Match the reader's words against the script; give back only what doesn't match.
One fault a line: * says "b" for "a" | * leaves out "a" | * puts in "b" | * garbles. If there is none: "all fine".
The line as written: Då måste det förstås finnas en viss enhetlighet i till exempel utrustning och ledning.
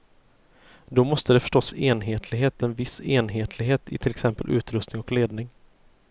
* says "enhetlighet" for "finnas"